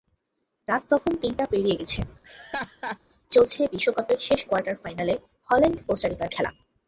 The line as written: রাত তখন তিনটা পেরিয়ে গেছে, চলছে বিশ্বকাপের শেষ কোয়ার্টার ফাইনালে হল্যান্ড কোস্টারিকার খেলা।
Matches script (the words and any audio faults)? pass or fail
fail